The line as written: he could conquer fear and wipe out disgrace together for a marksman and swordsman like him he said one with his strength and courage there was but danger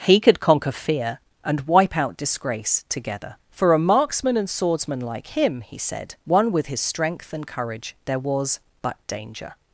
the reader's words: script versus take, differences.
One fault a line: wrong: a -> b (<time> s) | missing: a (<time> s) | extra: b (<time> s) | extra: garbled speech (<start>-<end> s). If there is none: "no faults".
no faults